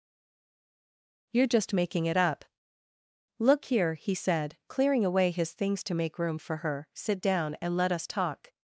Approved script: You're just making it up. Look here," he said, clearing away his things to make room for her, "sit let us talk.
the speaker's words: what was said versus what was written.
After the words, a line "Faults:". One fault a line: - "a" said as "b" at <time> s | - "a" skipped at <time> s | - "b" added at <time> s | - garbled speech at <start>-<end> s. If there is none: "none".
You're just making it up. Look here," he said, clearing away his things to make room for her, "sit down and let us talk.
Faults:
- "down and" added at 7.2 s